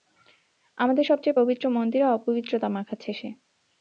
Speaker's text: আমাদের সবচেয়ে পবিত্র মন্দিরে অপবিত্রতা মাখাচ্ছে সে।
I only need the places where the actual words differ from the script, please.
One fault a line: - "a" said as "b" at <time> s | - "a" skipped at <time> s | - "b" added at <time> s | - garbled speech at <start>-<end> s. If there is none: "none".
none